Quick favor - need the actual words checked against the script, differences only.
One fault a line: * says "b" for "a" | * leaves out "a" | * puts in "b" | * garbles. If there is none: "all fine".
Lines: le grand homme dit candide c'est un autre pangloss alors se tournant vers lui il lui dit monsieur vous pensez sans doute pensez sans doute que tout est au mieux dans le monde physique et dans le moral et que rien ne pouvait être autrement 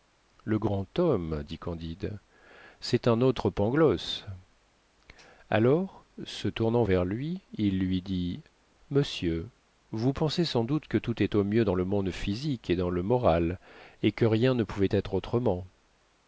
* leaves out "pensez sans doute"